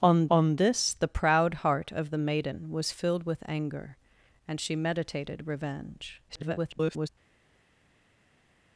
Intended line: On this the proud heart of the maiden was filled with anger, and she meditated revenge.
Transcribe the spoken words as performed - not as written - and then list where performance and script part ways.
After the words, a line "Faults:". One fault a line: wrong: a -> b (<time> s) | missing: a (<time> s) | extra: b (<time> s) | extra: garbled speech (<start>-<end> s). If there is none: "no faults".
On on this the proud heart of the maiden was filled with anger, and she meditated revenge. [garbled]
Faults:
extra: on (0.3 s)
extra: garbled speech (6.3-7.1 s)